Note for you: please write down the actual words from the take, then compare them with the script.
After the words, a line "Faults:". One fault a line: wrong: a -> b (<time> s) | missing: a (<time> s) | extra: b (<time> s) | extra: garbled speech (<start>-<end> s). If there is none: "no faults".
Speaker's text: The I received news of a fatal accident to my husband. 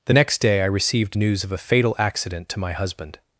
The next day I received news of a fatal accident to my husband.
Faults:
extra: next day (0.1 s)